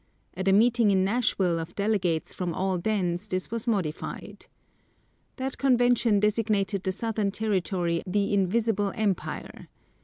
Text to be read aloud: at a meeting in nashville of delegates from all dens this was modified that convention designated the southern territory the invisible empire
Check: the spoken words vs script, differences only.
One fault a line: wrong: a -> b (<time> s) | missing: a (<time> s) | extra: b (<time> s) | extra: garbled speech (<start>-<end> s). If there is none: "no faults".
no faults